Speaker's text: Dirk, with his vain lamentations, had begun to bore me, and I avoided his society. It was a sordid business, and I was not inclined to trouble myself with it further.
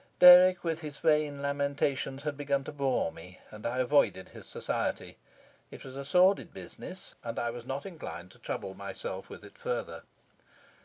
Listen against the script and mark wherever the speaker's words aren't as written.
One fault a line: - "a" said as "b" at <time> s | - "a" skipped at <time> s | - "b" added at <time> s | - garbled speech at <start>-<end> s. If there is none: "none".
none